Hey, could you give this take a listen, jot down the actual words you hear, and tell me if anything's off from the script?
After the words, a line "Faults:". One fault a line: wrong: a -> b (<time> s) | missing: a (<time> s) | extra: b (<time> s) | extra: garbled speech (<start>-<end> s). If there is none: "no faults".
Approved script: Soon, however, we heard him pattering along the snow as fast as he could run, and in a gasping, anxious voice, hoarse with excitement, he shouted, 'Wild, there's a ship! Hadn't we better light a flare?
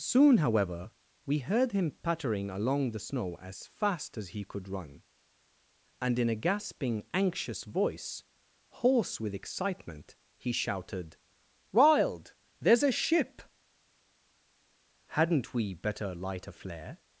Soon, however, we heard him pattering along the snow as fast as he could run, and in a gasping, anxious voice, hoarse with excitement, he shouted, 'Wild, there's a ship! Hadn't we better light a flare?
Faults:
no faults